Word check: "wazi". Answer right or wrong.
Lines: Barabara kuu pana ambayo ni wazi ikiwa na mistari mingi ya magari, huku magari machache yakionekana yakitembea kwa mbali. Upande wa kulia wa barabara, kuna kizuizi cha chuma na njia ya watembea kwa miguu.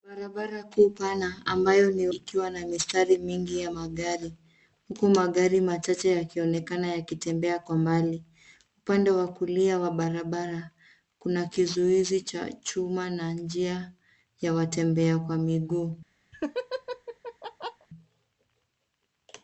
wrong